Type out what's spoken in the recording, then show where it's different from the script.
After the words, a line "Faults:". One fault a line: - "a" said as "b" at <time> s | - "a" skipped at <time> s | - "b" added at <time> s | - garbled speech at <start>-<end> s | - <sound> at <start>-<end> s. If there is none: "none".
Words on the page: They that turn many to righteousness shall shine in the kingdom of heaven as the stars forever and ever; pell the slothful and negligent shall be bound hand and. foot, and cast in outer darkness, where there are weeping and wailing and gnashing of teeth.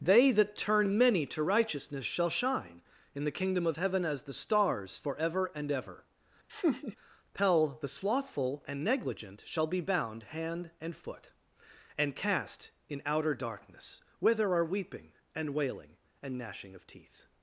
They that turn many to righteousness shall shine in the kingdom of heaven as the stars forever and ever; pell the slothful and negligent shall be bound hand and. foot, and cast in outer darkness, where there are weeping and wailing and gnashing of teeth.
Faults:
- laugh at 6.5-7.0 s